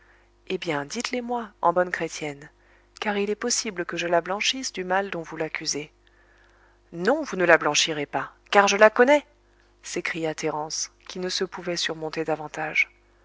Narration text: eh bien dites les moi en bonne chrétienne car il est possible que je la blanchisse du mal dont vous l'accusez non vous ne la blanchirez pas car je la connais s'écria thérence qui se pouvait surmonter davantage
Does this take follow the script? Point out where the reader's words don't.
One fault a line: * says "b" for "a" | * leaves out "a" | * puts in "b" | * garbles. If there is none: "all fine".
* puts in "ne"